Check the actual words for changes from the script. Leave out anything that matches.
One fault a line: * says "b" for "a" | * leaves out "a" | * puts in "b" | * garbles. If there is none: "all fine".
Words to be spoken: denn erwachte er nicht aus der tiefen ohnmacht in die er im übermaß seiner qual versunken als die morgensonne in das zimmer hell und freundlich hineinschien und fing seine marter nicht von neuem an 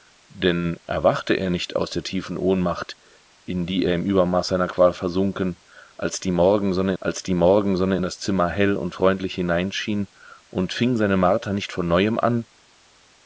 * puts in "als die morgensonne"